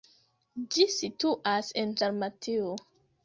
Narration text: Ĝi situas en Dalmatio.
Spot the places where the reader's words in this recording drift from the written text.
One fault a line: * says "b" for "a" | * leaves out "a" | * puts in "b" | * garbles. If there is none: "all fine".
all fine